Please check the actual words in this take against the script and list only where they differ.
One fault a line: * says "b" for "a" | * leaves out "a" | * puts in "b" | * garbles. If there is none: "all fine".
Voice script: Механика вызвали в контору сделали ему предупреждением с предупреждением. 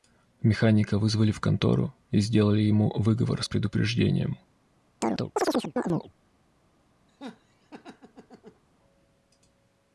* puts in "и"
* says "выговор" for "предупреждением"